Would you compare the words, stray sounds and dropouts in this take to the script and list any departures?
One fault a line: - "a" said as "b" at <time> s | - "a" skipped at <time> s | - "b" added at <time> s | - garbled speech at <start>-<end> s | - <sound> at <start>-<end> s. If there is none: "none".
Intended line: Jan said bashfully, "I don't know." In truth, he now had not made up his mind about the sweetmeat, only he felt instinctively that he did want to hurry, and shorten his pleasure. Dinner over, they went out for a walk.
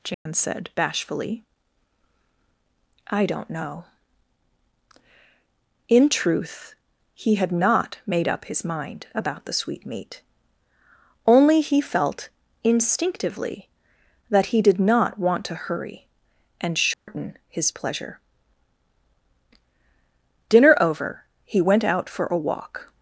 - dropout at 0.1-0.3 s
- "now" skipped at 7.3 s
- "not" added at 14.8 s
- dropout at 16.9-17.1 s
- "they" said as "he" at 21.4 s